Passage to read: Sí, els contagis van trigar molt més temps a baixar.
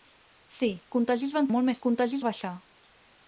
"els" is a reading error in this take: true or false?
true